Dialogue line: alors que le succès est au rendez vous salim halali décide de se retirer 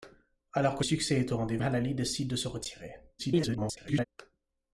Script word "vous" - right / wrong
wrong